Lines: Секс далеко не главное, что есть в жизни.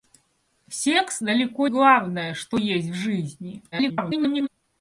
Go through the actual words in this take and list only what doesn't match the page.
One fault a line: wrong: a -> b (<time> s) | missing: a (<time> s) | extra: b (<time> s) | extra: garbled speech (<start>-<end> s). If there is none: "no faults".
missing: не (1.7 s)
extra: garbled speech (3.7-4.5 s)